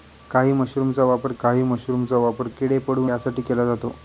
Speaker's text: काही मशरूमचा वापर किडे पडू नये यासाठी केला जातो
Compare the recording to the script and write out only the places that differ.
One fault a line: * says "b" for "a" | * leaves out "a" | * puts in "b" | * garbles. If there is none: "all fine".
* puts in "काही मशरूमचा वापर"
* leaves out "नये"